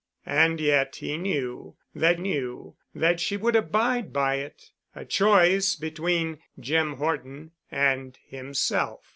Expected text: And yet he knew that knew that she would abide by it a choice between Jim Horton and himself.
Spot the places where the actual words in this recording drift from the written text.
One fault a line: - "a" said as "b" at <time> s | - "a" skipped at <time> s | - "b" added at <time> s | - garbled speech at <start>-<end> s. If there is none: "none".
none